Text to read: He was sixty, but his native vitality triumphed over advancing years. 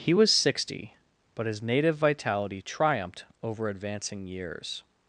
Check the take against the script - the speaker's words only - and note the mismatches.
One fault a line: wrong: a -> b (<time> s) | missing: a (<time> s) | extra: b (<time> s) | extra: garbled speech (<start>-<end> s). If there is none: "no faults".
no faults